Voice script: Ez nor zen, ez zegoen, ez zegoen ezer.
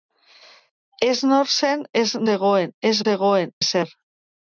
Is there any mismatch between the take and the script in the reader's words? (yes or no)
no